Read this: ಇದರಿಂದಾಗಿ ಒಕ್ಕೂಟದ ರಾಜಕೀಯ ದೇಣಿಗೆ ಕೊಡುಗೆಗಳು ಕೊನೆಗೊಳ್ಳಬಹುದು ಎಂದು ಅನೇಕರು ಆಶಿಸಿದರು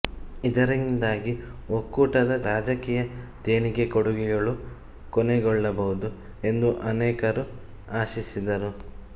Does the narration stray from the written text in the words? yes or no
no